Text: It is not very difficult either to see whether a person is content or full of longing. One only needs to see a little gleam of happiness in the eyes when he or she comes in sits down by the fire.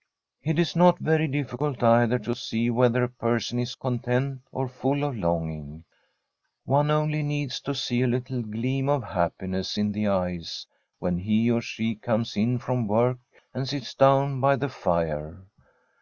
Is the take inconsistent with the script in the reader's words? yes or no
yes